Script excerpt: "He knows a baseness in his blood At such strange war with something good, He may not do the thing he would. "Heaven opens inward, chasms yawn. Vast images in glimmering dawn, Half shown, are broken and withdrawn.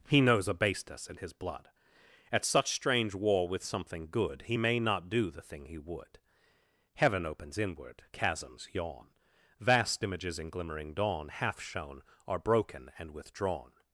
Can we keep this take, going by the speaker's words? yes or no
yes